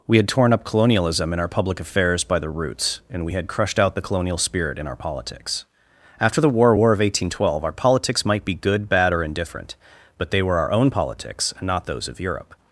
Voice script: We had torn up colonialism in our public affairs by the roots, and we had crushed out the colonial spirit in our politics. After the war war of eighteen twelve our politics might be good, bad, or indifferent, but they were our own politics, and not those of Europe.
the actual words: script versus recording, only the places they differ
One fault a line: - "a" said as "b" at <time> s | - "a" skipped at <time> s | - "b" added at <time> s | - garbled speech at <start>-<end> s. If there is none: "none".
none